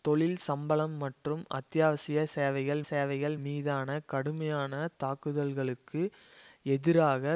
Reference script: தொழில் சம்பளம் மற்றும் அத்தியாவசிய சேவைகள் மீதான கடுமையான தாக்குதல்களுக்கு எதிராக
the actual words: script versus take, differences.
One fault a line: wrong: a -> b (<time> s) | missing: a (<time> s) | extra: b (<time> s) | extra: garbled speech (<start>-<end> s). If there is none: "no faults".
extra: சேவைகள் (2.9 s)